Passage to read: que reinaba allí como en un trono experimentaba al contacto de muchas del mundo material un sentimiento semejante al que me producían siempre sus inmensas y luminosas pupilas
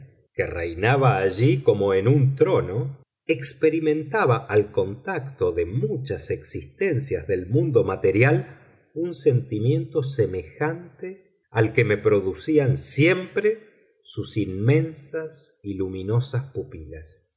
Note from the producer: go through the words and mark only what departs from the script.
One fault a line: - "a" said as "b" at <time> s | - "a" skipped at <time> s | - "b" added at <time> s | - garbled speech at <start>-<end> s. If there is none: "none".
- "existencias" added at 6.3 s